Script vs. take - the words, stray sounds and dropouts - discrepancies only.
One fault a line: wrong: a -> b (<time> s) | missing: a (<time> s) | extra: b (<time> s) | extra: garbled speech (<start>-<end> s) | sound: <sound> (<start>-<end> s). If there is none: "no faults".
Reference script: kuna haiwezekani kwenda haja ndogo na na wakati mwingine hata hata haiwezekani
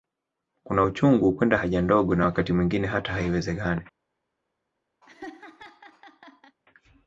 wrong: haiwezekani -> uchungu (0.8 s)
missing: na (2.3 s)
missing: hata (3.1 s)
sound: laugh (5.0-6.6 s)